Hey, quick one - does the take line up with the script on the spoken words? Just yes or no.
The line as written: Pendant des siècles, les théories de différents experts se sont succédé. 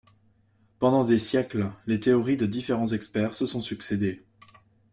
yes